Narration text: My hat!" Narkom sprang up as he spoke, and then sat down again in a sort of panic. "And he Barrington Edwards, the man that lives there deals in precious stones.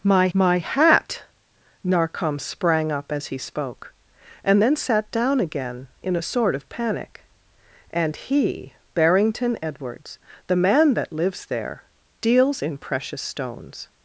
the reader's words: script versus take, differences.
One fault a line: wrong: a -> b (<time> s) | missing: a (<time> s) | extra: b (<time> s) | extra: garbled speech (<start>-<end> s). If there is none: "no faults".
extra: my (0.3 s)